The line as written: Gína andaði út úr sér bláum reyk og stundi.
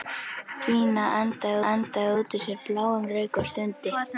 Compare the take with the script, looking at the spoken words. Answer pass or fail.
fail